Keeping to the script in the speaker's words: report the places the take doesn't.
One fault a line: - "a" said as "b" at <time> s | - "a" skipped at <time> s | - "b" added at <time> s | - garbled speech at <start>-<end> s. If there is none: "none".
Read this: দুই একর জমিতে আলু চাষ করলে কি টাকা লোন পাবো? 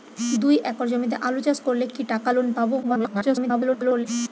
- garbled speech at 2.8-4.1 s